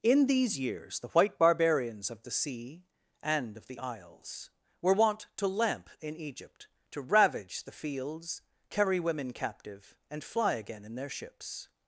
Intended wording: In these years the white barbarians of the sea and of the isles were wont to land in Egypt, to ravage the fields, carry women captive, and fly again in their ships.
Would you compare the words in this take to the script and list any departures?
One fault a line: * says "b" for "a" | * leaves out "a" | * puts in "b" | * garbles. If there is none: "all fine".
* says "lamp" for "land"